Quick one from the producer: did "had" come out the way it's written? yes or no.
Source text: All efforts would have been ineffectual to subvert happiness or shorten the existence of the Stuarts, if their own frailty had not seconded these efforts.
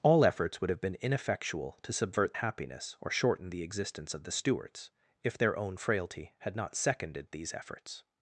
yes